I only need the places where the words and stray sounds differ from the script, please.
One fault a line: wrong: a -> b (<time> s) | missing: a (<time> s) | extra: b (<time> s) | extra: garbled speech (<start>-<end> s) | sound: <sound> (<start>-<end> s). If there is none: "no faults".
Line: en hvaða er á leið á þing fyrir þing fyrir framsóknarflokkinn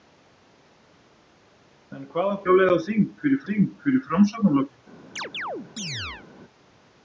sound: chirp (5.2-6.3 s)